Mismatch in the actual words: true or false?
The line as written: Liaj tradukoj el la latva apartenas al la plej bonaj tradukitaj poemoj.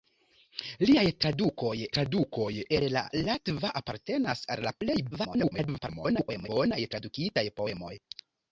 true